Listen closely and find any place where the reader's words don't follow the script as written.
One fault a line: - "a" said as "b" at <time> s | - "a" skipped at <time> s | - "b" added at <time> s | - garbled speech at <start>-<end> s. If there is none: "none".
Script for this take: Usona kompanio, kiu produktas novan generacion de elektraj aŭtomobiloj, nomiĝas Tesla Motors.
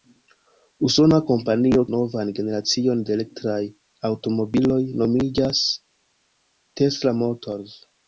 - "kiu produktas" skipped at 1.8 s